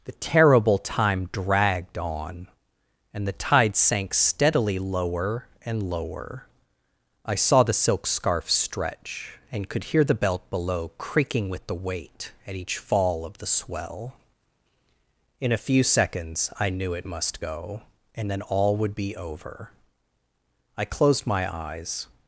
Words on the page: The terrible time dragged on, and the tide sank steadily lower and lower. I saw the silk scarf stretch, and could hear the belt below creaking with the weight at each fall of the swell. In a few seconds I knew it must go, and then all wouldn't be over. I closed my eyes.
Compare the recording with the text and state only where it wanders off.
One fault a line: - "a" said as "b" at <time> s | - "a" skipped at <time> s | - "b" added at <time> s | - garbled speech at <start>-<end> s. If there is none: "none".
- "wouldn't" said as "would" at 18.8 s